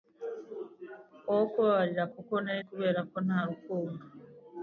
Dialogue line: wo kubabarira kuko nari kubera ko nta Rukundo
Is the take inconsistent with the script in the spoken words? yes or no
no